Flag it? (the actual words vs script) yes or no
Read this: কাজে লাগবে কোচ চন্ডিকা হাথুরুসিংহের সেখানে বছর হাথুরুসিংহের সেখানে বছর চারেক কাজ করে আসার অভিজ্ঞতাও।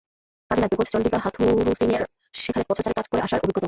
yes